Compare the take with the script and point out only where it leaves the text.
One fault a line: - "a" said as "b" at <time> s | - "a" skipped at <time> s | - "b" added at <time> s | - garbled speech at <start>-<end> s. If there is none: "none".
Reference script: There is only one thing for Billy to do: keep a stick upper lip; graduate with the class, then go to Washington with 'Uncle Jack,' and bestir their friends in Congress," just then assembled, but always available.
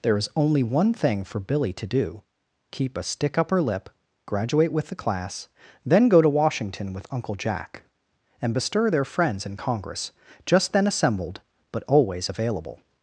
none